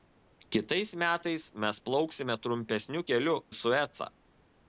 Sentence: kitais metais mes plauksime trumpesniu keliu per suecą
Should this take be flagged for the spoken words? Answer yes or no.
yes